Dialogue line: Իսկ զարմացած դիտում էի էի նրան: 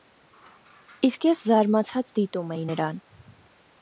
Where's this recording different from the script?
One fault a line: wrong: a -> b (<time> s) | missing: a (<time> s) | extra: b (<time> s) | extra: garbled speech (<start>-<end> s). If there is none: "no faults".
extra: ես (1.3 s)
missing: էի (2.7 s)